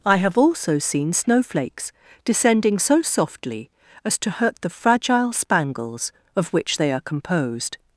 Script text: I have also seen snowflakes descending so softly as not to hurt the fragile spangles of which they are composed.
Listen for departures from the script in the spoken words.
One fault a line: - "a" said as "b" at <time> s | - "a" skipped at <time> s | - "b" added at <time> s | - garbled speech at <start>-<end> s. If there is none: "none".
- "not" skipped at 4.2 s